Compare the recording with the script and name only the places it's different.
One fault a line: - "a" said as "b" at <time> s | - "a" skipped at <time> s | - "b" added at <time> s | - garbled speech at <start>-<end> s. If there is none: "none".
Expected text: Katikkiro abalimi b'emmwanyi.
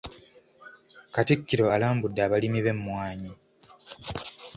- "alambudde" added at 1.7 s